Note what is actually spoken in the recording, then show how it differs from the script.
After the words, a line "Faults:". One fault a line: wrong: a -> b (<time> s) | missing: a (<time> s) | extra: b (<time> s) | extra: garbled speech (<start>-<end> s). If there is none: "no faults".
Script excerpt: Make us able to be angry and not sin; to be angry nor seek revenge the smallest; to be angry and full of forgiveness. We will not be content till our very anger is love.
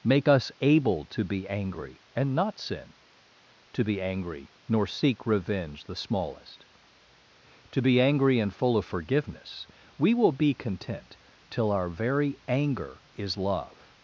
Make us able to be angry and not sin; to be angry nor seek revenge the smallest; to be angry and full of forgiveness. We will be content till our very anger is love.
Faults:
missing: not (10.3 s)